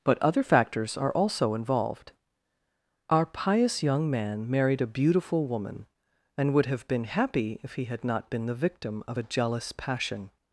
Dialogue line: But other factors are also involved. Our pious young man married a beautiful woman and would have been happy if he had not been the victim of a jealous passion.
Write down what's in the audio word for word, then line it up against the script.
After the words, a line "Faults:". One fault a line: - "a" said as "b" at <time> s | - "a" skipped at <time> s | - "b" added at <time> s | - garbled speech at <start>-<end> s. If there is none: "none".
But other factors are also involved. Our pious young man married a beautiful woman and would have been happy if he had not been the victim of a jealous passion.
Faults:
none